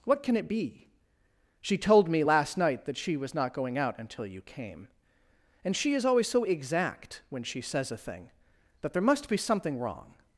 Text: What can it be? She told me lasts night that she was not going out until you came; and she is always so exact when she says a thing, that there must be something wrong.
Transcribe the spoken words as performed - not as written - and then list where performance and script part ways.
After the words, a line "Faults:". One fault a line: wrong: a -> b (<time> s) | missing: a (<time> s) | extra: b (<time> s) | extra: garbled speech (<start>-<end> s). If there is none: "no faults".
What can it be? She told me last night that she was not going out until you came; and she is always so exact when she says a thing, that there must be something wrong.
Faults:
wrong: lasts -> last (2.2 s)